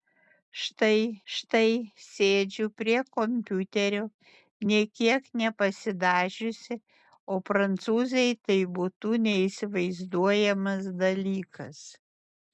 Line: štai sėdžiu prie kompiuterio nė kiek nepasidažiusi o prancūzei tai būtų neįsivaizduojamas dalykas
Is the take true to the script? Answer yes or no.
no